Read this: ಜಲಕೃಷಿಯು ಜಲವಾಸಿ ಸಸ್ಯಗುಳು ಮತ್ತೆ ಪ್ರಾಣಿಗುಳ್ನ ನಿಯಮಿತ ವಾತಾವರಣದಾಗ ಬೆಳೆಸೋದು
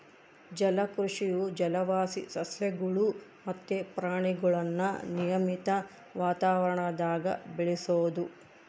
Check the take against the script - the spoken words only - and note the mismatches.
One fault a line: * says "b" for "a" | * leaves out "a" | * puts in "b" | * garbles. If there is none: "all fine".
all fine